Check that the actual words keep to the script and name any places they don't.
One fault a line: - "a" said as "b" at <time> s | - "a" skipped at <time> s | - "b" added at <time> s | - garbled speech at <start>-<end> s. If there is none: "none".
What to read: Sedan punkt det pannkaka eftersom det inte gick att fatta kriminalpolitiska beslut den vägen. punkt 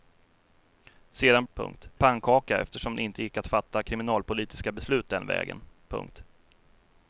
none